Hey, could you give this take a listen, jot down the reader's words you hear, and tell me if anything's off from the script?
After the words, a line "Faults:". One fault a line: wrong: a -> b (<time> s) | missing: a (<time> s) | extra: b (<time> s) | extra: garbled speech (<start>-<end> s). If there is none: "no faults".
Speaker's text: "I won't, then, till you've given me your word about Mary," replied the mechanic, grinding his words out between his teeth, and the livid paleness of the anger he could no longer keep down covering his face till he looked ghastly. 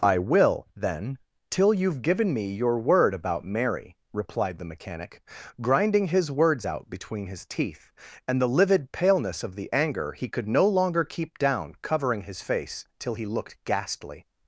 "I will, then, till you've given me your word about Mary," replied the mechanic, grinding his words out between his teeth, and the livid paleness of the anger he could no longer keep down covering his face till he looked ghastly.
Faults:
wrong: won't -> will (0.2 s)